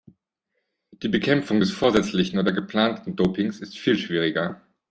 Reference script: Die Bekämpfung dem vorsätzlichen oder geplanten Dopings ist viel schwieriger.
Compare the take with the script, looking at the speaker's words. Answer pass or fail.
fail